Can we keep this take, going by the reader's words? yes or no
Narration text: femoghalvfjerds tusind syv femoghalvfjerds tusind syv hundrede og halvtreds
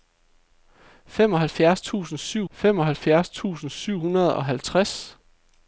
yes